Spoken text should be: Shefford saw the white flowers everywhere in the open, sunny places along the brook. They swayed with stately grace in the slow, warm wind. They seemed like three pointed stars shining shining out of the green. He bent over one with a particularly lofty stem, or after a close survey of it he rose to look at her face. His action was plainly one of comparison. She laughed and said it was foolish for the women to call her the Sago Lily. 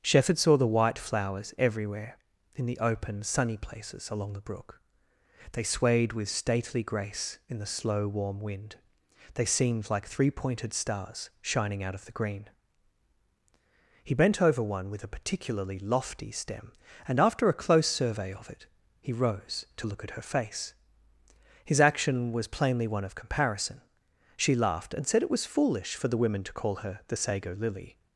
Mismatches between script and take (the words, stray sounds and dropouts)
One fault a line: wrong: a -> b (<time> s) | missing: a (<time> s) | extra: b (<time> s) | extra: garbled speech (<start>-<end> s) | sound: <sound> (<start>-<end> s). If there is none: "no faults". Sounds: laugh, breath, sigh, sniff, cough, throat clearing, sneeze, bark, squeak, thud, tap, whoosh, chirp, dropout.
missing: shining (11.8 s)
wrong: or -> and (17.1 s)